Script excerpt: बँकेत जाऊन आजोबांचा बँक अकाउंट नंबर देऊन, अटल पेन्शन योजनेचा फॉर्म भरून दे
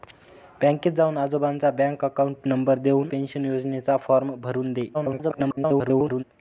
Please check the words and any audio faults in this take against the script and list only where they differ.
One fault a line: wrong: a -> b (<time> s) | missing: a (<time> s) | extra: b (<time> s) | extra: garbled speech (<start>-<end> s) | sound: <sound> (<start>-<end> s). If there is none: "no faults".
missing: अटल (3.1 s)
extra: garbled speech (4.9-6.2 s)